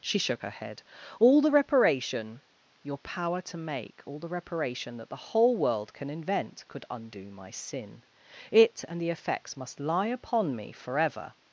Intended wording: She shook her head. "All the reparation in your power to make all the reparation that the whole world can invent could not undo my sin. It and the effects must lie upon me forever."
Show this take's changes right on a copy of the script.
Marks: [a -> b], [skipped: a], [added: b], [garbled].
She shook her head. "All the reparation [skipped: in] your power to make all the reparation that the whole world can invent could [skipped: not] undo my sin. It and the effects must lie upon me forever."